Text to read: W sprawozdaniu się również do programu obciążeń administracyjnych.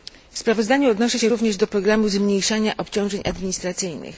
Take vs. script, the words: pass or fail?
fail